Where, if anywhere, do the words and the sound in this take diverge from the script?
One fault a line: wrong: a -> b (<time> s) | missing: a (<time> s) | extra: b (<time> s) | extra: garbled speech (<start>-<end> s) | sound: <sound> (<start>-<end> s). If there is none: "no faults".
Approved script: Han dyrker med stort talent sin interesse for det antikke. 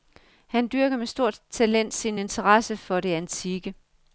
no faults